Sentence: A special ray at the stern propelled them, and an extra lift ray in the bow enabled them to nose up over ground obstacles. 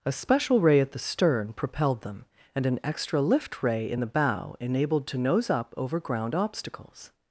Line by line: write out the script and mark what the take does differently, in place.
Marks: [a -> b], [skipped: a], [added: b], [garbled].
A special ray at the stern propelled them, and an extra lift ray in the bow enabled [skipped: them] to nose up over ground obstacles.